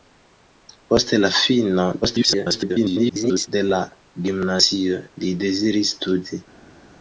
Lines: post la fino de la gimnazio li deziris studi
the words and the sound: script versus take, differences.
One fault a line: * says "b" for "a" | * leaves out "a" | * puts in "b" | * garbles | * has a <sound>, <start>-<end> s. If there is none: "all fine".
* garbles